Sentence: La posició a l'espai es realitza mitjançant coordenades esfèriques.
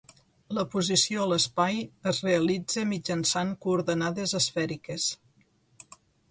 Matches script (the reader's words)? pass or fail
pass